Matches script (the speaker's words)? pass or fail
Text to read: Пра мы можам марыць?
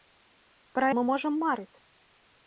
pass